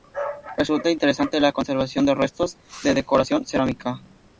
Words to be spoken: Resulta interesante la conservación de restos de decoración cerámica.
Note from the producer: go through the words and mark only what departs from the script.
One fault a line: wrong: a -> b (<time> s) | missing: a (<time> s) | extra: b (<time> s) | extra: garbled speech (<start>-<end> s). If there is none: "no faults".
no faults